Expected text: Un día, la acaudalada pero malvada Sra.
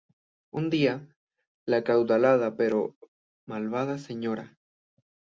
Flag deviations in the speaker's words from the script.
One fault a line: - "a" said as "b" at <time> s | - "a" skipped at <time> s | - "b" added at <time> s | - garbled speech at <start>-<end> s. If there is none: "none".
none